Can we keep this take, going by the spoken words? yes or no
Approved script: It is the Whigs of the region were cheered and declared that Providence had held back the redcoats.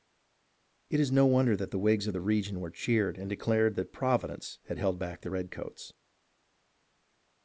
no